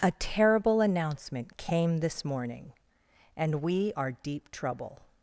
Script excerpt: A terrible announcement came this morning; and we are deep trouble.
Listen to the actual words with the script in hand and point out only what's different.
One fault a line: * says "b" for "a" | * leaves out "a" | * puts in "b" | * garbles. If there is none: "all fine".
all fine